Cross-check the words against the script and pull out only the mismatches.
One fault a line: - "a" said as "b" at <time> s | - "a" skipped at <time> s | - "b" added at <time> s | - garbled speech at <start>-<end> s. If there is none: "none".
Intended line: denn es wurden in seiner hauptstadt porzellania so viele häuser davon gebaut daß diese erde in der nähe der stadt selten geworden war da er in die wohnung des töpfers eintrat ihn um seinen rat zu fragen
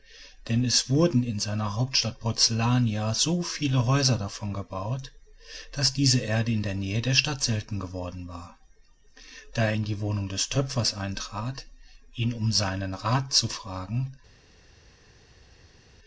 none